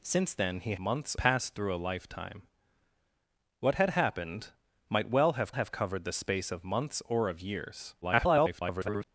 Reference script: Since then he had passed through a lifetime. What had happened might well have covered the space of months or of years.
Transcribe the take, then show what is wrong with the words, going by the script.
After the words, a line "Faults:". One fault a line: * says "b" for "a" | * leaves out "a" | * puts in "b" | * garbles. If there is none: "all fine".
Since then he months passed through a lifetime. What had happened might well have have covered the space of months or of years. [garbled]
Faults:
* says "months" for "had"
* puts in "have"
* garbles